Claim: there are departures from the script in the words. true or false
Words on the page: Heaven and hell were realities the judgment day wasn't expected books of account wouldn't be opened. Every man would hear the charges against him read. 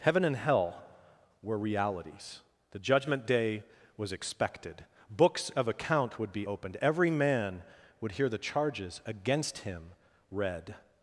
true